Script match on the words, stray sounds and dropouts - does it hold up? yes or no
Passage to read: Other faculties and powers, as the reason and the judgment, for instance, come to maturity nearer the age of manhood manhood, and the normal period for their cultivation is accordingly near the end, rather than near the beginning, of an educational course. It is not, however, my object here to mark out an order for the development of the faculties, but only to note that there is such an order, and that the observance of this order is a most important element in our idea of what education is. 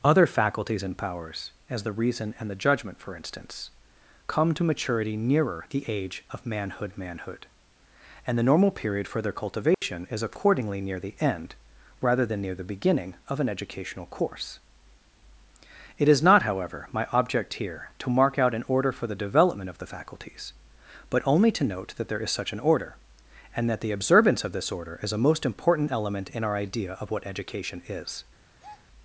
no